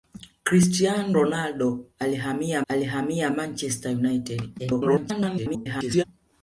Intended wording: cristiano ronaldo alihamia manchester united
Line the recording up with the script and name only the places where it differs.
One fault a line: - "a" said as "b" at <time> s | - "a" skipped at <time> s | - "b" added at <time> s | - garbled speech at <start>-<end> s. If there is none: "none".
- "alihamia" added at 2.7 s
- garbled speech at 4.6-6.0 s